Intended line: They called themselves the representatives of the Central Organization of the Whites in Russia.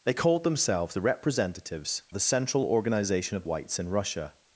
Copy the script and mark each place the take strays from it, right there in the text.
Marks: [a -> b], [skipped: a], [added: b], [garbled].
They called themselves the representatives [skipped: of] the Central Organization of [skipped: the] Whites in Russia.